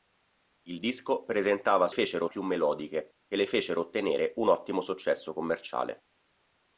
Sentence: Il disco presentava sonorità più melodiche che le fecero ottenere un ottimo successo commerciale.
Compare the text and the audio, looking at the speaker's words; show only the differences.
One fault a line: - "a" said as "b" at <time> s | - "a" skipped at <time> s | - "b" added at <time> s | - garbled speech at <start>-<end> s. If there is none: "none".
- "sonorità" said as "fecero" at 1.9 s